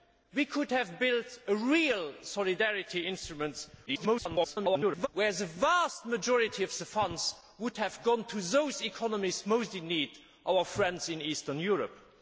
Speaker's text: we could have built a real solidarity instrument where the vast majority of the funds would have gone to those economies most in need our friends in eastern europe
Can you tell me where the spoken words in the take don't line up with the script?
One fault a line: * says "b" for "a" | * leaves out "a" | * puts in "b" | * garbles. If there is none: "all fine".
* garbles